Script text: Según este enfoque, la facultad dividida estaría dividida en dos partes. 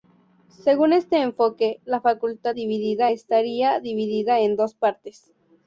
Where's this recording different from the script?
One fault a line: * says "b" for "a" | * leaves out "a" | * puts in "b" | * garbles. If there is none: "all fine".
all fine